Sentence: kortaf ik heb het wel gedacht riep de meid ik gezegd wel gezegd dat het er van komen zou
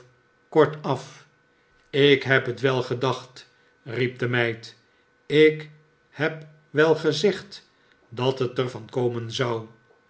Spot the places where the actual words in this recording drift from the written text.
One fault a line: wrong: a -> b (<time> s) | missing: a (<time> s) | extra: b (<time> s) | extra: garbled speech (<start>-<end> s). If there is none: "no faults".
wrong: gezegd -> heb (6.1 s)